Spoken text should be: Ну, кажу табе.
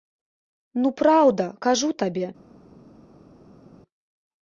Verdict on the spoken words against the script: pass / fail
fail